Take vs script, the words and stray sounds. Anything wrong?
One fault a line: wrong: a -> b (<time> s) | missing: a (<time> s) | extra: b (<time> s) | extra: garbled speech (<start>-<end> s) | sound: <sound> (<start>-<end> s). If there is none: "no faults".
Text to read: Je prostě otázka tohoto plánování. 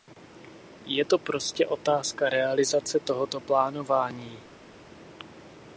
extra: to (1.0 s)
extra: realizace (2.3 s)